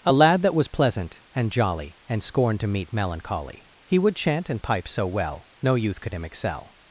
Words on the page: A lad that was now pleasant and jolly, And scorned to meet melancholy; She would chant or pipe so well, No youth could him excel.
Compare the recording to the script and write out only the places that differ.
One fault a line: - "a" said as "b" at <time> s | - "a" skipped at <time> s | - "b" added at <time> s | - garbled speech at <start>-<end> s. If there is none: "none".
- "now" skipped at 0.7 s
- "She" said as "He" at 3.9 s
- "or" said as "and" at 4.5 s